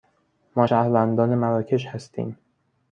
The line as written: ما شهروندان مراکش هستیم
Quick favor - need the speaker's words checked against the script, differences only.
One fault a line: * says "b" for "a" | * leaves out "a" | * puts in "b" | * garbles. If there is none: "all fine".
all fine